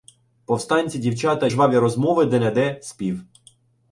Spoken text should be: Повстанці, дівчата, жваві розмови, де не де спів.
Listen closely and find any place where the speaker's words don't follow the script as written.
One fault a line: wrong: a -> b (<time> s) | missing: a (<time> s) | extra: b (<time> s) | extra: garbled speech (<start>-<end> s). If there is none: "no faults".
no faults